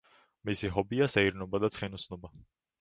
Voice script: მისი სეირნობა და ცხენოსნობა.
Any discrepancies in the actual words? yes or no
yes